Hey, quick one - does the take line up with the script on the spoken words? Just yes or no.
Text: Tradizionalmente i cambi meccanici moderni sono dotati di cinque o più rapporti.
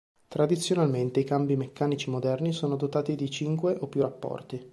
yes